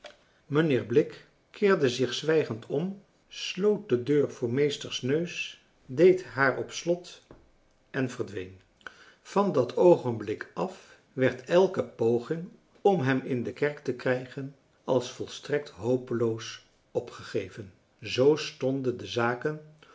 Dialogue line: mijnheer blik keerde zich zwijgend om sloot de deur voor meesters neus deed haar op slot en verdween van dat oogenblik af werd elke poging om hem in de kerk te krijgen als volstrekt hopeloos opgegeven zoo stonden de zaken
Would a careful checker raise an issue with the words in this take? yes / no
no